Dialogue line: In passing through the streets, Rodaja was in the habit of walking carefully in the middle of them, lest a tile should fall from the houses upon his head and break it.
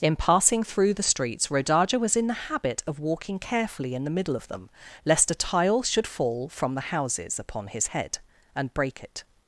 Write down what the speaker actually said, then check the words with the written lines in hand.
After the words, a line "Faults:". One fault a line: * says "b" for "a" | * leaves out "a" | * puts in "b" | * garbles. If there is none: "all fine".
In passing through the streets, Rodaja was in the habit of walking carefully in the middle of them, lest a tile should fall from the houses upon his head and break it.
Faults:
all fine